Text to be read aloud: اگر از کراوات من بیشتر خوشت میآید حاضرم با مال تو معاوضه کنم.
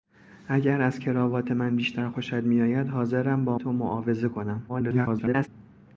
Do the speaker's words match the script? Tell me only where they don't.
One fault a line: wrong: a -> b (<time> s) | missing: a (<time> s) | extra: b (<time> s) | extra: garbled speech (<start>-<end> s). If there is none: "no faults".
missing: مال (3.6 s)
extra: garbled speech (4.7-5.5 s)